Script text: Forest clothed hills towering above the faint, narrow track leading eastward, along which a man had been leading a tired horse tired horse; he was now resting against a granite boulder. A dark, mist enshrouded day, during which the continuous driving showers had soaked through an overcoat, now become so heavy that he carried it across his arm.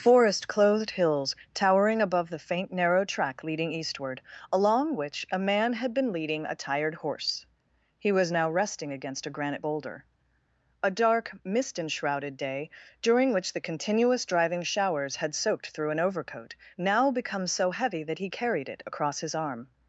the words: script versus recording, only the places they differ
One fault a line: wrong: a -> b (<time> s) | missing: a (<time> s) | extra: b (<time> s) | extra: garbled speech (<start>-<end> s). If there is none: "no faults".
missing: tired horse (7.5 s)